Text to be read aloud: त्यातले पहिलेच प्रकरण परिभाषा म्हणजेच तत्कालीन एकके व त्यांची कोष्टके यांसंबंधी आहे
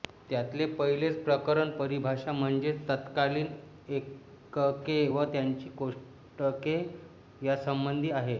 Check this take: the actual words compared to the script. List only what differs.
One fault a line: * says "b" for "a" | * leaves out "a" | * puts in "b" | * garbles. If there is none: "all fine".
all fine